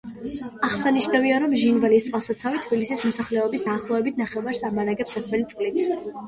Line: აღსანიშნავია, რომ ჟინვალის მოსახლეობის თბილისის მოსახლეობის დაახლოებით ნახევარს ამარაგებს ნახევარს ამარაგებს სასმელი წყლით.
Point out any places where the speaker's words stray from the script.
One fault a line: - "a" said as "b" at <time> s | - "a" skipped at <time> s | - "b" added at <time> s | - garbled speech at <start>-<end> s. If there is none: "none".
- "მოსახლეობის" said as "წყალსაცავი" at 2.1 s
- "ნახევარს ამარაგებს" skipped at 5.2 s